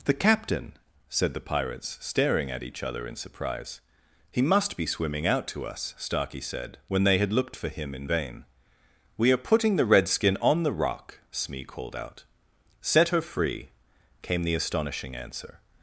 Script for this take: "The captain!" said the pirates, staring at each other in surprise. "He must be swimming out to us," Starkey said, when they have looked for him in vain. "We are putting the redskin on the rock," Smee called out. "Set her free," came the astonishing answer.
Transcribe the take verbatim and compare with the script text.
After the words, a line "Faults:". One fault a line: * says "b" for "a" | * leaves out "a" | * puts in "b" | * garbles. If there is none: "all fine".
"The captain!" said the pirates, staring at each other in surprise. "He must be swimming out to us," Starkey said, when they had looked for him in vain. "We are putting the redskin on the rock," Smee called out. "Set her free," came the astonishing answer.
Faults:
* says "had" for "have"